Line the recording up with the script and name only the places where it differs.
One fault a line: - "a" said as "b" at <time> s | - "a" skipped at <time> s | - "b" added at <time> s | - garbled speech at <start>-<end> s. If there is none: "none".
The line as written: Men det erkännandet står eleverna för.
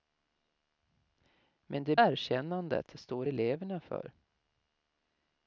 none